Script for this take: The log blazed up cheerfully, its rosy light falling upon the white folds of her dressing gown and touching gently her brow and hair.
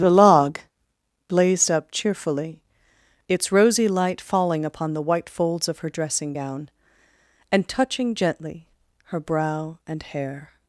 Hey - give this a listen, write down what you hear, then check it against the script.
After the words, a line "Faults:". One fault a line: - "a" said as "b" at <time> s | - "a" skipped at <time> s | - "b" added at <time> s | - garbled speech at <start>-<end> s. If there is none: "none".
The log blazed up cheerfully, its rosy light falling upon the white folds of her dressing gown and touching gently her brow and hair.
Faults:
none